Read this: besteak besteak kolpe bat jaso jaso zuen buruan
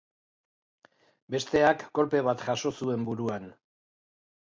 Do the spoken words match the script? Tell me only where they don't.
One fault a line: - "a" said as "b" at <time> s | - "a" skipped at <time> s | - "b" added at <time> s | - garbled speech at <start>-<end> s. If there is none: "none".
- "besteak" skipped at 1.9 s
- "jaso" skipped at 2.7 s